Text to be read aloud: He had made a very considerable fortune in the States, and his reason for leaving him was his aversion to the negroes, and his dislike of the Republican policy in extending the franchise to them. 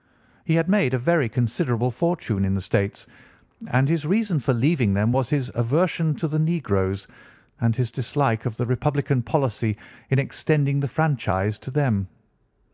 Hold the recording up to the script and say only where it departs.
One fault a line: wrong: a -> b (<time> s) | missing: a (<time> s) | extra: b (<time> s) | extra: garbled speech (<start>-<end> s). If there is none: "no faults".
wrong: him -> them (5.0 s)